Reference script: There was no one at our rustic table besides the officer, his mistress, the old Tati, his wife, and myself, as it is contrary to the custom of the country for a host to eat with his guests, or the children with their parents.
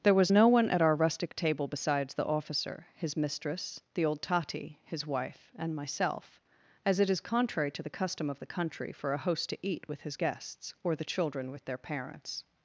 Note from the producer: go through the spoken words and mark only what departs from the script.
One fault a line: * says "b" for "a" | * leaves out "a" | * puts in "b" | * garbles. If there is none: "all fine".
all fine